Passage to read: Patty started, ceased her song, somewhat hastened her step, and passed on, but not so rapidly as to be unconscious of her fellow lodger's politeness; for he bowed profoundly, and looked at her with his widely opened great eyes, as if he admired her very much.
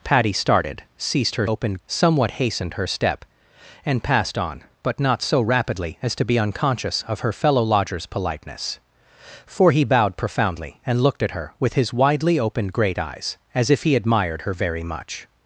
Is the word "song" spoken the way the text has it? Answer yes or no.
no